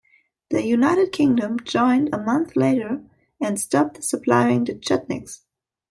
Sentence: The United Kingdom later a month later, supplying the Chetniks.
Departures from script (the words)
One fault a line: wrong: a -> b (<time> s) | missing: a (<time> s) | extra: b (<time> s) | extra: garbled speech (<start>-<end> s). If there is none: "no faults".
wrong: later -> joined (1.6 s)
extra: and stopped (3.4 s)